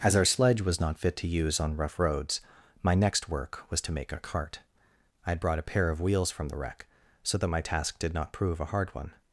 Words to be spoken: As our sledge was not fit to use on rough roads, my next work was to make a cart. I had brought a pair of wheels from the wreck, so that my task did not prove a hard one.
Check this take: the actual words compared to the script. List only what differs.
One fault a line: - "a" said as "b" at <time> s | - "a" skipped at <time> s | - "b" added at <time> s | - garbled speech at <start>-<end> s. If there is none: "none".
none